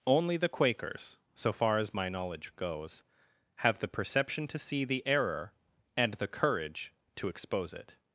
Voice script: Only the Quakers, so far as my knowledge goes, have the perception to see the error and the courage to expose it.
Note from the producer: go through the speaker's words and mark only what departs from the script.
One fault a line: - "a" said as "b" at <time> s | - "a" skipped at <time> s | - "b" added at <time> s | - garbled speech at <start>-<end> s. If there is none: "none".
none